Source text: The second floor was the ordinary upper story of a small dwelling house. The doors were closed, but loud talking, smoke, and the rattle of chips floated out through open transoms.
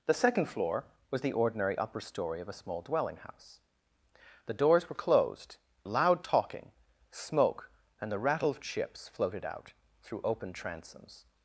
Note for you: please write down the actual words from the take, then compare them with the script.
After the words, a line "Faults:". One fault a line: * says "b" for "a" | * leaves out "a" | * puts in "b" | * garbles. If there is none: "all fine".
The second floor was the ordinary upper story of a small dwelling house. The doors were closed, loud talking, smoke, and the rattle of chips floated out through open transoms.
Faults:
* leaves out "but"